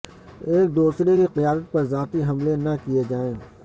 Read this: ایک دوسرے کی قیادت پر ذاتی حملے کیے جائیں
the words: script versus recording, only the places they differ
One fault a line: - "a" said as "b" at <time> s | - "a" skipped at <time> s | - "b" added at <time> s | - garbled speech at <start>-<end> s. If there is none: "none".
- "نہ" added at 2.6 s